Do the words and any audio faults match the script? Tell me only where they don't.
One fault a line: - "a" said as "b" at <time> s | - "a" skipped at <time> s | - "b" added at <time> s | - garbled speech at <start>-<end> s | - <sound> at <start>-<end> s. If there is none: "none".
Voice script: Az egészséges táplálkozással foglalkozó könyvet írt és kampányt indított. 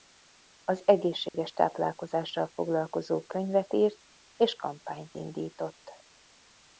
- dropout at 1.3-1.3 s